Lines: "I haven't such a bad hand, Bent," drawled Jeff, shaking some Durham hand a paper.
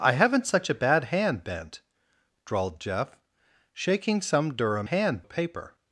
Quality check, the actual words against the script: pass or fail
pass